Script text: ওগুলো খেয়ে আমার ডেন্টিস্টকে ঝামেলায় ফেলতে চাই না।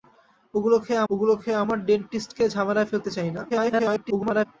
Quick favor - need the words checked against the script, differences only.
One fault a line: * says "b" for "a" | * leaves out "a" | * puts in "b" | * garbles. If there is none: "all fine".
* puts in "ওগুলো খেয়ে"
* garbles